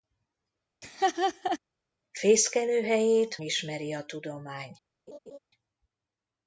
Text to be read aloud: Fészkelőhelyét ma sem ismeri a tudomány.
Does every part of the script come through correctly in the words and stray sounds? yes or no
no